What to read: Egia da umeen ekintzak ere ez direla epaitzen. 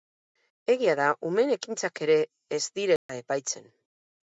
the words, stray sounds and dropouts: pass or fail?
fail